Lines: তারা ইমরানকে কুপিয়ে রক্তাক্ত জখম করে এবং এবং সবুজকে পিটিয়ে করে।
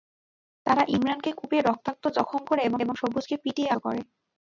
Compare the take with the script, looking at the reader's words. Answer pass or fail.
pass